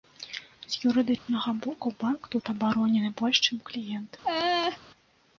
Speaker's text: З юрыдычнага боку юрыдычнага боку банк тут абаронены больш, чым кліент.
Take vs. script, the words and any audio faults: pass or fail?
fail